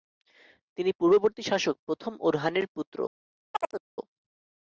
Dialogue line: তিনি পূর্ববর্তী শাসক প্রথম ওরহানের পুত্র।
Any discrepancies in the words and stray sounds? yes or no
yes